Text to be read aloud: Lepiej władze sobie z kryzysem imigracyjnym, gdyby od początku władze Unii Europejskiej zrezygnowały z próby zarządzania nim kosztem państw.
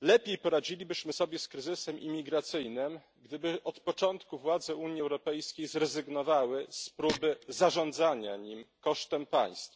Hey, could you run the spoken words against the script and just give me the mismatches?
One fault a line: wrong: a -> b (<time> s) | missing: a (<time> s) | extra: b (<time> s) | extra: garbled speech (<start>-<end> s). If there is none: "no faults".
wrong: władze -> poradzilibyśmy (0.4 s)